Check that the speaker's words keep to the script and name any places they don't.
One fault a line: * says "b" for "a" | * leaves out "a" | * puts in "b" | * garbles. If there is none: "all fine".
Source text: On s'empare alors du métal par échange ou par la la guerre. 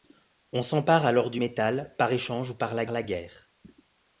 all fine